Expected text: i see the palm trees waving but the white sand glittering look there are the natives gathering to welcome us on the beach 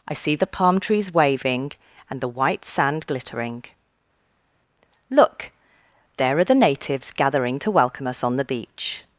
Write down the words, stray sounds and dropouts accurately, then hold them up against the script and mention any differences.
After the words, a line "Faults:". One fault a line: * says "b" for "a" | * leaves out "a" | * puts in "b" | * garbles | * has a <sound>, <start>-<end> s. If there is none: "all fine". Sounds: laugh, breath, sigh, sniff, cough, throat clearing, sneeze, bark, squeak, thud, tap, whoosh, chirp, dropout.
i see the palm trees waving and the white sand glittering look there are the natives gathering to welcome us on the beach
Faults:
* says "and" for "but"